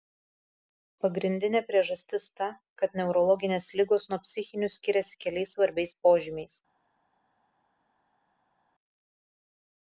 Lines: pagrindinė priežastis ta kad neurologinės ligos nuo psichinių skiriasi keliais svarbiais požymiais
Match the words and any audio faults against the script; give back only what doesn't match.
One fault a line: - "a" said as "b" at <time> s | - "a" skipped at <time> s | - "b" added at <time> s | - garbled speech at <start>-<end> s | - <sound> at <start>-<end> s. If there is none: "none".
none